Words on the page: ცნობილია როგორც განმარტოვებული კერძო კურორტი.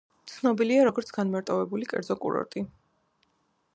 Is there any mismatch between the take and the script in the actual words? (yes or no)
no